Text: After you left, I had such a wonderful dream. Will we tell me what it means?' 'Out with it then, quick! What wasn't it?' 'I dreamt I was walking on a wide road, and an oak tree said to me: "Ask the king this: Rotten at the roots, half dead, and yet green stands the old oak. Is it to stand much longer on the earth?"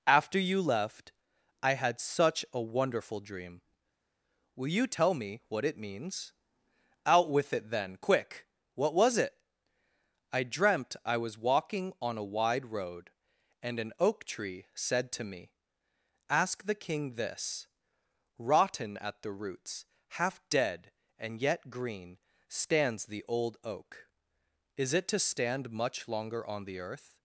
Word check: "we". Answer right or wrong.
wrong